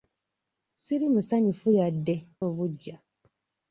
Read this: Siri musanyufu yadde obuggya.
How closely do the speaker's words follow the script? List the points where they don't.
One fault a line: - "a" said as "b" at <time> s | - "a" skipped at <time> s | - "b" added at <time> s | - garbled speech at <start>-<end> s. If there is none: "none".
none